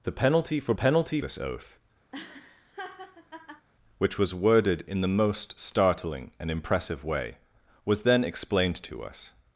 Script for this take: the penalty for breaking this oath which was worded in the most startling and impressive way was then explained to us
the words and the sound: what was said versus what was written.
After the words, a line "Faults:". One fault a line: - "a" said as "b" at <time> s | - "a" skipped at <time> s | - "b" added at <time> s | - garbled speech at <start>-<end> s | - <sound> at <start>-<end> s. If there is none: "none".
the penalty for penalty this oath which was worded in the most startling and impressive way was then explained to us
Faults:
- "breaking" said as "penalty" at 0.7 s
- laugh at 2.1-3.7 s